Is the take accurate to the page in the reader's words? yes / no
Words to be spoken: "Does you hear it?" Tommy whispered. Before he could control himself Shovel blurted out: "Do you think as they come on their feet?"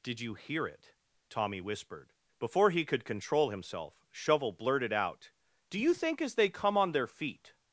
no